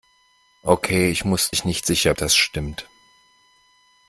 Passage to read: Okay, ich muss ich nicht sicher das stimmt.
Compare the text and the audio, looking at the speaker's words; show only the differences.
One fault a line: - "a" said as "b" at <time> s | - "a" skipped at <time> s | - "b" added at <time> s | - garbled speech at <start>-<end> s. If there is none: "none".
none